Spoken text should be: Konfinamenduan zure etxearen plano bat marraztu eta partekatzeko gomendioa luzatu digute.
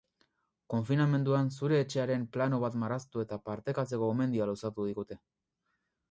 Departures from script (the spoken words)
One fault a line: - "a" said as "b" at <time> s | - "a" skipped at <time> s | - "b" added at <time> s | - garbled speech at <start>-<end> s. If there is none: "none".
none